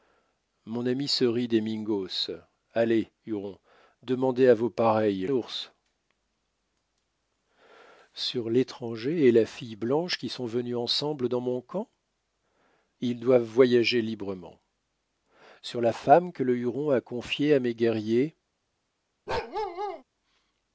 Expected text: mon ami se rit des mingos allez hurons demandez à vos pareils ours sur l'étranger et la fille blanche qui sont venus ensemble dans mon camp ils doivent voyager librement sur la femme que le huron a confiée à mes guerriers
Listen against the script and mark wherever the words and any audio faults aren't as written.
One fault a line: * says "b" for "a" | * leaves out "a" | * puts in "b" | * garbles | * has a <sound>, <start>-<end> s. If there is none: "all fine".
* has a bark, 19.3-20.0 s